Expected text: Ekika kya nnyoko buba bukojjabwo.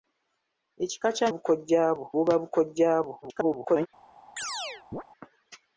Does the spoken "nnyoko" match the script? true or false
false